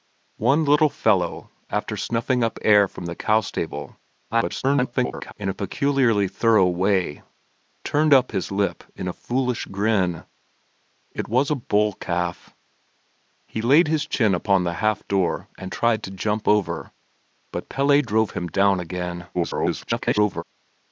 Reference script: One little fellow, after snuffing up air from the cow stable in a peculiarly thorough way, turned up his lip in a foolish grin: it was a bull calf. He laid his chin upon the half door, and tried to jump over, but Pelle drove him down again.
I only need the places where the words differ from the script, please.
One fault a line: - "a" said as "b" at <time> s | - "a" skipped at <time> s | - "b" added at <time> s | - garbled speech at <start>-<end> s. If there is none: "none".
- garbled speech at 4.3-5.3 s
- garbled speech at 19.3-20.4 s